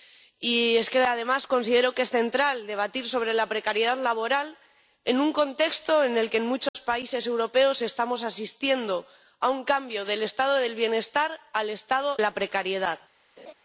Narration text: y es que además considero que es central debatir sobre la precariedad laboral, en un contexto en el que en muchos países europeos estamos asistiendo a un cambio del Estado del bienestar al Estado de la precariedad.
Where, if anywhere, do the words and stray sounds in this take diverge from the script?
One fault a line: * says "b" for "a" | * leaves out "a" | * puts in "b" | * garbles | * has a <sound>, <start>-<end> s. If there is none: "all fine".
* has a dropout, 6.7-6.7 s
* leaves out "de"
* has a laugh, 13.4-13.5 s